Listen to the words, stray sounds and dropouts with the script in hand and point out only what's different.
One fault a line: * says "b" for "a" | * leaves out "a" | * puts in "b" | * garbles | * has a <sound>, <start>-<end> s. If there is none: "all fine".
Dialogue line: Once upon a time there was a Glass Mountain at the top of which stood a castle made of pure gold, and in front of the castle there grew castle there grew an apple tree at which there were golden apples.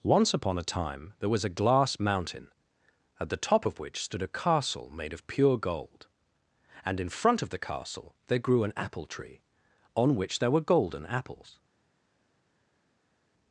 * leaves out "castle there grew"
* says "on" for "at"